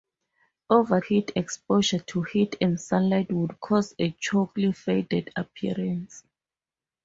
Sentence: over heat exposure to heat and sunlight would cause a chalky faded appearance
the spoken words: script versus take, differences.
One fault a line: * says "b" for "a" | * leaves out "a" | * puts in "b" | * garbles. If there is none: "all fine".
all fine